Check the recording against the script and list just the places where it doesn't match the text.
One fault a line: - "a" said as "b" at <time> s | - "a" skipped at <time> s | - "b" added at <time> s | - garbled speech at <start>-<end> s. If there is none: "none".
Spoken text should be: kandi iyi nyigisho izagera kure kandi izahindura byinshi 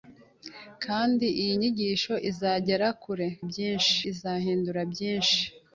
- "kandi" said as "byinshi" at 3.5 s